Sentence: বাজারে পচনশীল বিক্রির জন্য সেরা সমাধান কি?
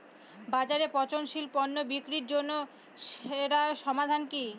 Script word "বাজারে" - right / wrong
right